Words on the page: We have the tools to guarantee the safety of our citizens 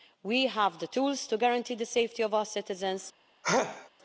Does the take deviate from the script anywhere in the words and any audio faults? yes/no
yes